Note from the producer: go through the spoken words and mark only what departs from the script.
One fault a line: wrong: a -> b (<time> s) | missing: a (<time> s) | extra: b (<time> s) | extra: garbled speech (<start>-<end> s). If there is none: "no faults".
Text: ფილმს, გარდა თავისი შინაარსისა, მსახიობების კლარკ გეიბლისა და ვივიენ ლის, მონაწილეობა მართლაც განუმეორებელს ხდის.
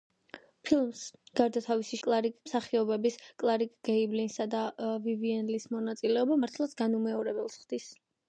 wrong: შინაარსისა -> კლარკ (2.1 s)